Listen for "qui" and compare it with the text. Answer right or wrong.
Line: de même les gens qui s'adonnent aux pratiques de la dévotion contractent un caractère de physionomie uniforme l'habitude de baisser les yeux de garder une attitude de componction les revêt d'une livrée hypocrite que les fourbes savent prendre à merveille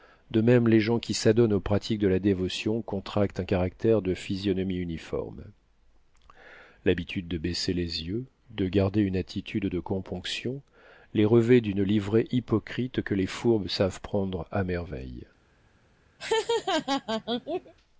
right